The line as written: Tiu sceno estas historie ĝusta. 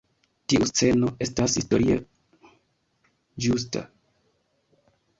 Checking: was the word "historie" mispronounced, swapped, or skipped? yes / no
no